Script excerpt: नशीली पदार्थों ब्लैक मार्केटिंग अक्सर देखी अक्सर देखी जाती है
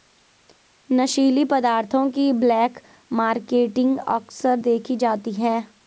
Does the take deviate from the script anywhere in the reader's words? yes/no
yes